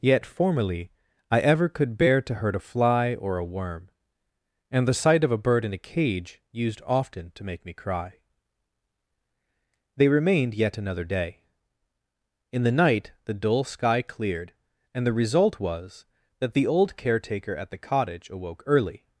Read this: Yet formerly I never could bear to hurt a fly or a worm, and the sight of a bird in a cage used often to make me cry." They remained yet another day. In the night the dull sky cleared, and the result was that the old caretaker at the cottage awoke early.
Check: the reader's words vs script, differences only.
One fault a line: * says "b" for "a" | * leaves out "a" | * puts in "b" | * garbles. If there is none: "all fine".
* says "ever" for "never"